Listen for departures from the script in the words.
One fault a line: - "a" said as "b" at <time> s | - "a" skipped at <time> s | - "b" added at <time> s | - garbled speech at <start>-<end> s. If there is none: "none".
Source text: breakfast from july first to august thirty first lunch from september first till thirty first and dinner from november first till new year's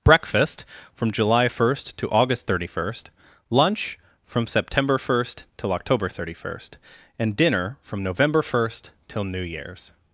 - "october" added at 5.7 s